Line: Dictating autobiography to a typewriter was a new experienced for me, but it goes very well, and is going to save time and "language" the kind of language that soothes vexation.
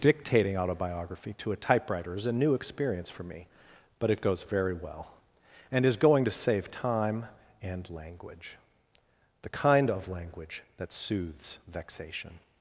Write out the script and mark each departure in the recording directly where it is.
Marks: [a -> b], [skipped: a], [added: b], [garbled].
Dictating autobiography to a typewriter [was -> is] a new [experienced -> experience] for me, but it goes very well, and is going to save time and "language" the kind of language that soothes vexation.